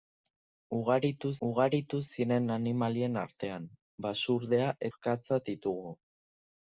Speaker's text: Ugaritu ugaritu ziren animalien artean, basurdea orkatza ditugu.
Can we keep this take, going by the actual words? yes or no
yes